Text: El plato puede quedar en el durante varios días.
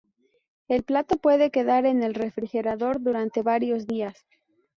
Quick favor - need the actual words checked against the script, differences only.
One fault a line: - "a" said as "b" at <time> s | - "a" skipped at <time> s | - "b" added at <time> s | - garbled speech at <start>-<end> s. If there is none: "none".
- "refrigerador" added at 2.1 s